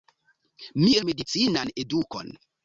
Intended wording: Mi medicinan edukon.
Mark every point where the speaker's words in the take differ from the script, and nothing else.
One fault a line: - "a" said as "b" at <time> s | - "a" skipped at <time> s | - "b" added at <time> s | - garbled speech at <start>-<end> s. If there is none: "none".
none